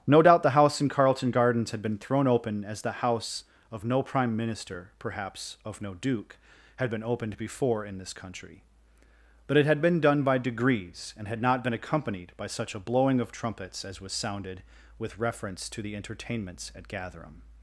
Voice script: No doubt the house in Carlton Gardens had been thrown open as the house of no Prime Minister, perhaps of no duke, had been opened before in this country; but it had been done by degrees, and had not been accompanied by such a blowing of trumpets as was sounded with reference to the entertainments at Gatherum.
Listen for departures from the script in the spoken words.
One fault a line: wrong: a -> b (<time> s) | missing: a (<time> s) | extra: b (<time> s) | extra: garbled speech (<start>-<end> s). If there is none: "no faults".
no faults